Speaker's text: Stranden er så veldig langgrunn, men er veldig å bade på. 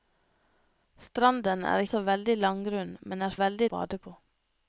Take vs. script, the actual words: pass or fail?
pass